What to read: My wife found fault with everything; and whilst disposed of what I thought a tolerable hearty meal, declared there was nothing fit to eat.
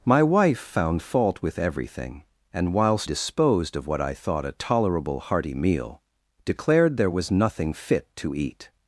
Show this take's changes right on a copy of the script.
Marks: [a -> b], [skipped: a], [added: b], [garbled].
My wife found fault with everything; and whilst disposed of what I thought a tolerable hearty meal, declared there was nothing fit to eat.